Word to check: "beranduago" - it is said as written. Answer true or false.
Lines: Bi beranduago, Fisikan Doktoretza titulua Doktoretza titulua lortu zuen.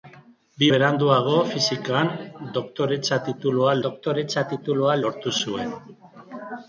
true